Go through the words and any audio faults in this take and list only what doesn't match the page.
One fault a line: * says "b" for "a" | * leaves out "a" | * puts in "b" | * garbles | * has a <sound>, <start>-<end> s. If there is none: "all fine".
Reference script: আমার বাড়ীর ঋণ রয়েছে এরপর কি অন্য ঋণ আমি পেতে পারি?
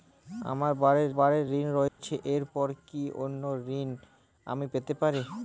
* puts in "বাড়ীর"
* has a dropout, 1.9-2.0 s